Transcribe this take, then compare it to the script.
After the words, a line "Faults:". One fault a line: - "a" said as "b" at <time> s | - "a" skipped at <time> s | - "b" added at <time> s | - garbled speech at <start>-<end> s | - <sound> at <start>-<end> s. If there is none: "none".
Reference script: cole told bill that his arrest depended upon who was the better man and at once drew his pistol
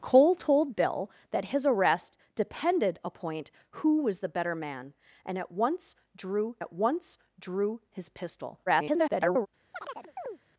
cole told bill that his arrest depended upon who was the better man and at once drew at once drew his pistol [garbled]
Faults:
- "at once drew" added at 6.6 s
- garbled speech at 8.7-9.5 s
- chirp at 9.7-10.4 s